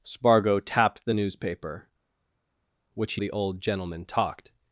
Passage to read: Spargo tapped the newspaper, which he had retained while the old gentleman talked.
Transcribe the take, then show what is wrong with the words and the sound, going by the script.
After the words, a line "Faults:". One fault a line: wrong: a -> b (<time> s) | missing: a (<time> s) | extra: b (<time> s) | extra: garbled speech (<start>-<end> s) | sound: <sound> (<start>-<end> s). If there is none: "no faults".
Spargo tapped the newspaper, which he the old gentleman talked.
Faults:
missing: had retained while (3.2 s)